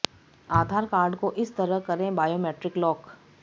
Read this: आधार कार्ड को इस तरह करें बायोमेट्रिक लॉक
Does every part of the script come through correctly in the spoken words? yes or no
yes